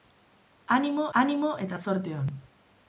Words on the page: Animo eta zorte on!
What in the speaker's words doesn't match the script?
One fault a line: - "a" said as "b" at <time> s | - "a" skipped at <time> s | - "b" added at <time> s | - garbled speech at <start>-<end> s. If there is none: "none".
- "animo" added at 1.2 s